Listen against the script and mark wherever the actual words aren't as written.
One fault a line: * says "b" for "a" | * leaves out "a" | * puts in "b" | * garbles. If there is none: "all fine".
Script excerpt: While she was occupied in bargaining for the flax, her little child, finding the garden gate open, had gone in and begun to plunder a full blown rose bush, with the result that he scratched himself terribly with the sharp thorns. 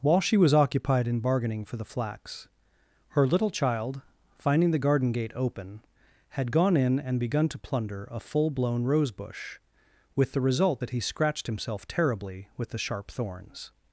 all fine